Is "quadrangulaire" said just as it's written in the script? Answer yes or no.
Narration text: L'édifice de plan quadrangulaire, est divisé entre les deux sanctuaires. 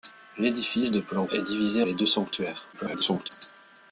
no